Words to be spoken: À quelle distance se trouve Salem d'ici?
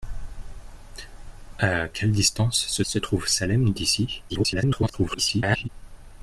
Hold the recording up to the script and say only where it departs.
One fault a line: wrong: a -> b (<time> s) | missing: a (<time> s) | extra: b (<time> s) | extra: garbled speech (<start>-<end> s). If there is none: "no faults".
extra: se (2.8 s)
extra: garbled speech (4.3-5.7 s)